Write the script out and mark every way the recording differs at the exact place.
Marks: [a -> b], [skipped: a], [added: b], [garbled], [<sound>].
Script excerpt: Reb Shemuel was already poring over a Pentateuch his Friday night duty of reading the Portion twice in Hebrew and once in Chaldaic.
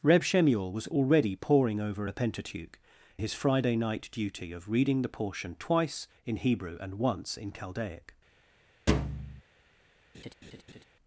Reb Shemuel was already poring over a Pentateuch his Friday night duty of reading the Portion twice in Hebrew and once in Chaldaic. [thud] [laugh]